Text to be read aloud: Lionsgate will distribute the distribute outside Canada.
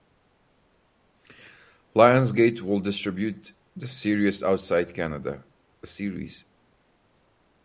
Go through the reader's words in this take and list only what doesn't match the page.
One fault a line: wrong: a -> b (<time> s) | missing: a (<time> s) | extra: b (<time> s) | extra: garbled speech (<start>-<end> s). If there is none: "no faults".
wrong: distribute -> series (3.9 s)